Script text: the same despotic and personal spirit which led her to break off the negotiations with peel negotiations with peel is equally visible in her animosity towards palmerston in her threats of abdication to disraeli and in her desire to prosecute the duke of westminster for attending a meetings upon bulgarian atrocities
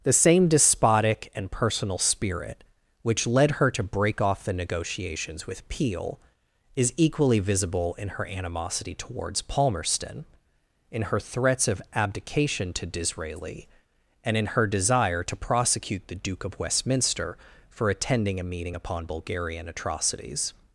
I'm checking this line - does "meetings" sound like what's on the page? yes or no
no